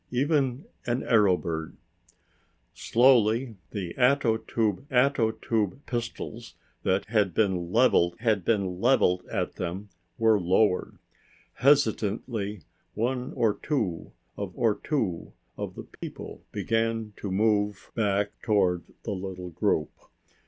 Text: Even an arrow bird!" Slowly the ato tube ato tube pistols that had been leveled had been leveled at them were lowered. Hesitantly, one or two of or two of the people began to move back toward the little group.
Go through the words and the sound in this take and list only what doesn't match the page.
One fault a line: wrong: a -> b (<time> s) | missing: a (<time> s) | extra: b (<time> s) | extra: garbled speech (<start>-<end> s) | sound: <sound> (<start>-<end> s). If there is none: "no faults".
sound: dropout (16.0-16.0 s)